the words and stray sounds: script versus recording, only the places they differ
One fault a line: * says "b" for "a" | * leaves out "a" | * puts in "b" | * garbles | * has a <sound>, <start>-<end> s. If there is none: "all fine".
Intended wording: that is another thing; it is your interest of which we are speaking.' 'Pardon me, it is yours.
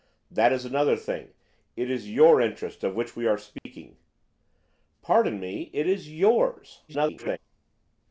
* has a dropout, 3.6-3.7 s
* garbles